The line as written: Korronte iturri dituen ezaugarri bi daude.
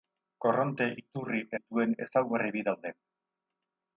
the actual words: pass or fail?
pass